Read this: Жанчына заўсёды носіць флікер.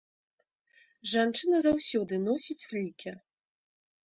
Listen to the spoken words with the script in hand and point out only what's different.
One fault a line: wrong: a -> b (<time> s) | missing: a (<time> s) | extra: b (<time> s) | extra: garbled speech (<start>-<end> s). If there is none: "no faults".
no faults